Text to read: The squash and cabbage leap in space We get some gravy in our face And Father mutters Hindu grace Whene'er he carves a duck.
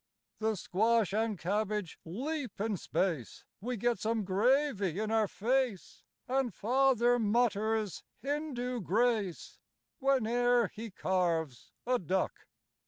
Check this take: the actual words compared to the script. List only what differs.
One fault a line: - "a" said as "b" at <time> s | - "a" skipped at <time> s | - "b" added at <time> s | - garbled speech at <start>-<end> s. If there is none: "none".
none